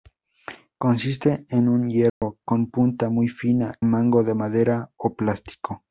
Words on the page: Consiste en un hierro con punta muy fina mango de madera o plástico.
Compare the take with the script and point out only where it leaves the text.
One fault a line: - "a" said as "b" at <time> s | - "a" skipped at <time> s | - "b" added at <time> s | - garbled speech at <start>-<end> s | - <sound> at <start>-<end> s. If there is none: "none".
- dropout at 2.1-2.2 s